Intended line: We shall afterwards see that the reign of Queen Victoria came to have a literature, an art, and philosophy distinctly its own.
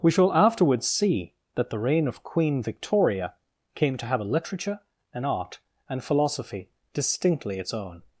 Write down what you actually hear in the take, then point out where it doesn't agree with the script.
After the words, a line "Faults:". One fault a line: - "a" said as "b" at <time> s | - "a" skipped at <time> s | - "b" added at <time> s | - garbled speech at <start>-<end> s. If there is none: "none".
We shall afterwards see that the reign of Queen Victoria came to have a literature, an art, and philosophy distinctly its own.
Faults:
none